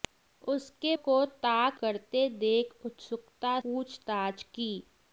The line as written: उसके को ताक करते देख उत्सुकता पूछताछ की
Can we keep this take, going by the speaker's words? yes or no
yes